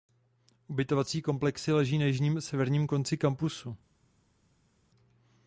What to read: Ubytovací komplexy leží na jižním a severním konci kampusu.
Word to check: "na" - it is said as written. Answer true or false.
true